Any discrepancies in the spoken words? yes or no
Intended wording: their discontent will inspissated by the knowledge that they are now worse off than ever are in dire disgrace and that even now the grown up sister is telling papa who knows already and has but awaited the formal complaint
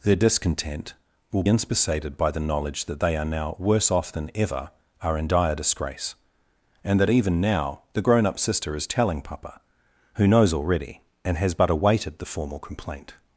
no